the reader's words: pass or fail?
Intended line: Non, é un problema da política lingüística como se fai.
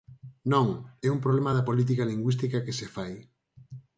fail